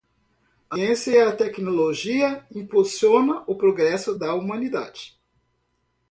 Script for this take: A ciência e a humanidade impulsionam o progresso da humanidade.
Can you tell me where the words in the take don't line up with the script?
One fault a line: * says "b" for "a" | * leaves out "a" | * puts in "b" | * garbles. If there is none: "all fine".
* says "tecnologia" for "humanidade"